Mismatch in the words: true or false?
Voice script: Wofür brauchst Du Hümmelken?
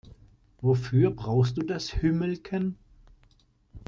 true